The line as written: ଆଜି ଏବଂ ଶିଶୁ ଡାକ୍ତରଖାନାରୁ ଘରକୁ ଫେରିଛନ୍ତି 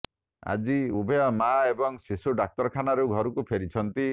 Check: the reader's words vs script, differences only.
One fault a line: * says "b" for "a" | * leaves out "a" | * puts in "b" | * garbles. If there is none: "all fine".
* puts in "ଉଭୟ ମାଆ"